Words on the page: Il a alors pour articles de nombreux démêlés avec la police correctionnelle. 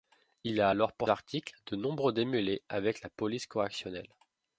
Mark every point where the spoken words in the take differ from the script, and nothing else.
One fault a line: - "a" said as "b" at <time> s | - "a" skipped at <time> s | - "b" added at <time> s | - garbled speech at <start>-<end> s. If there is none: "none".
none